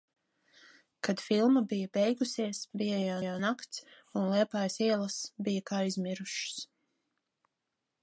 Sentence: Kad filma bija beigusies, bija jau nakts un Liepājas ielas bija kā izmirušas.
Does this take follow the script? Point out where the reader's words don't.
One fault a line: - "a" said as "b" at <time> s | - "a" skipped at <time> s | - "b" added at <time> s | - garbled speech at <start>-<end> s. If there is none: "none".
- "jau" added at 3.2 s